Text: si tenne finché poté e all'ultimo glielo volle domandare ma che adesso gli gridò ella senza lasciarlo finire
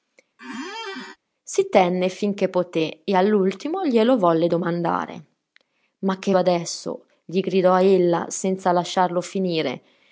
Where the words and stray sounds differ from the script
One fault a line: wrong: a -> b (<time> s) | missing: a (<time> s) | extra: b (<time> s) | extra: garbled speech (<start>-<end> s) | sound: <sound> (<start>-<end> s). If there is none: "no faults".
sound: squeak (0.4-1.2 s)